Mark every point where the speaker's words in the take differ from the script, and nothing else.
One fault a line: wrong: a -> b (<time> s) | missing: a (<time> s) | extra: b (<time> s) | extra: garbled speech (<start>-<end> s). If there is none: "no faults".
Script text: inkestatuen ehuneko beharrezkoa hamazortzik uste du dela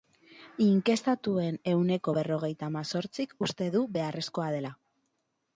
wrong: beharrezkoa -> berrogeita (2.2 s)
extra: beharrezkoa (4.0 s)